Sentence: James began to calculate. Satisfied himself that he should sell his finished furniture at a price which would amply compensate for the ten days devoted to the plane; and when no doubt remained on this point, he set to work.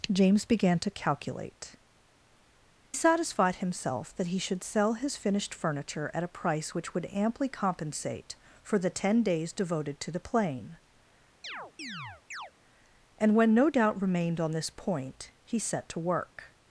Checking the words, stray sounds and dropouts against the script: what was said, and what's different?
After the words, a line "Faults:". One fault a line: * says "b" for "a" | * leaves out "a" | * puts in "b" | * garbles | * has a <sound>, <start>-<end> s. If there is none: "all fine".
James began to calculate. Satisfied himself that he should sell his finished furniture at a price which would amply compensate for the ten days devoted to the plane; and when no doubt remained on this point, he set to work.
Faults:
* has a chirp, 11.4-12.5 s